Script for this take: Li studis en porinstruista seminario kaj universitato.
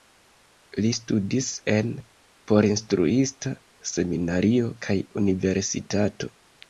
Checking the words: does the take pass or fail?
pass